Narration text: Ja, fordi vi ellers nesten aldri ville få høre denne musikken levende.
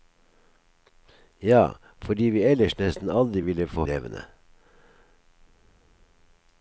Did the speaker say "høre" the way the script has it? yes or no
no